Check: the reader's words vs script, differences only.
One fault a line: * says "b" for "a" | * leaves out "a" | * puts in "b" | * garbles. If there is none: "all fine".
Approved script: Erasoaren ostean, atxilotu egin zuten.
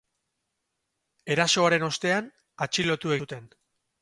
* leaves out "egin"